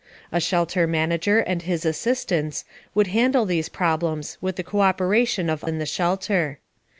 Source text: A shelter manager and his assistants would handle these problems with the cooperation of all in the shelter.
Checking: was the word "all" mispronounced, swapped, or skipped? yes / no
yes